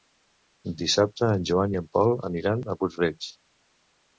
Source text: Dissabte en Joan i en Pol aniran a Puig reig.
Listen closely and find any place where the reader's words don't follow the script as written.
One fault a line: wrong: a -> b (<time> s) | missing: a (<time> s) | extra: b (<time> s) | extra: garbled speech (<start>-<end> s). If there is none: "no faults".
no faults